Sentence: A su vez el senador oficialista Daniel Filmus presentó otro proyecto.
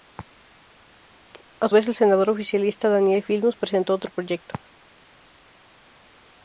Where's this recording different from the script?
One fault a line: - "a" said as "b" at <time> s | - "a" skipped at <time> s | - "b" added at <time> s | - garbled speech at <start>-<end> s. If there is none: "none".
- "su" skipped at 1.7 s